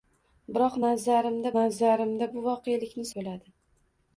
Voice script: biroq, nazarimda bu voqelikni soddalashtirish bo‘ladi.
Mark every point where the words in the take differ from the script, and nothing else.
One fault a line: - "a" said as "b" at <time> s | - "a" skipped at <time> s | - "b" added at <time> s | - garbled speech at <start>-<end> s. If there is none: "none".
- "nazarimda" added at 1.6 s
- "soddalashtirish" skipped at 3.1 s